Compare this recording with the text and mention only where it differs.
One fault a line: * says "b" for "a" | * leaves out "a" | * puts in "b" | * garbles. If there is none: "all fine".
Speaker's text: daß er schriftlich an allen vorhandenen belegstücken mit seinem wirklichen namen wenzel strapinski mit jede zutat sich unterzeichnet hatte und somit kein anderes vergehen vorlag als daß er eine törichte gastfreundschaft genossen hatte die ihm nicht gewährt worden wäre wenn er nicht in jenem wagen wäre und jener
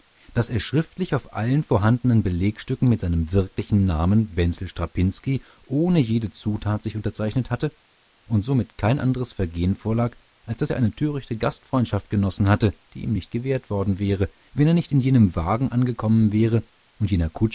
* says "auf" for "an"
* says "ohne" for "mit"
* puts in "angekommen"